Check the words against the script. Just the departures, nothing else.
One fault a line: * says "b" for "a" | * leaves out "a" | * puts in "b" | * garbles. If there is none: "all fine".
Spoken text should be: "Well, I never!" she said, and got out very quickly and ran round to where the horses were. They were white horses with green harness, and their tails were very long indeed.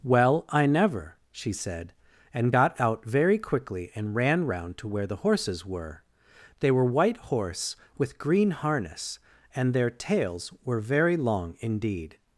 * says "horse" for "horses"